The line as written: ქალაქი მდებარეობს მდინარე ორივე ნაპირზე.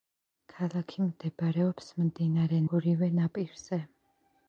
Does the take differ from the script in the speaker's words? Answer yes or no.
no